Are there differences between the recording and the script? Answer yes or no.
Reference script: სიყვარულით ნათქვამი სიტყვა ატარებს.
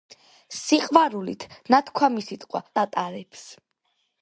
no